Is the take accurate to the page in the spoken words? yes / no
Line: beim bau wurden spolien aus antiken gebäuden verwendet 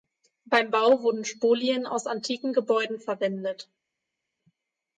yes